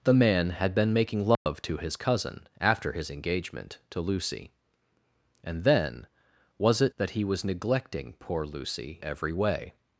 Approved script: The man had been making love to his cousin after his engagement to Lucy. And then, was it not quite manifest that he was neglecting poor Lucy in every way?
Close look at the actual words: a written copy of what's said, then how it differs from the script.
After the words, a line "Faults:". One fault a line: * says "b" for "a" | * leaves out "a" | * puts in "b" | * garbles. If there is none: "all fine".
The man had been making love to his cousin after his engagement to Lucy. And then, was it that he was neglecting poor Lucy every way?
Faults:
* leaves out "not quite manifest"
* leaves out "in"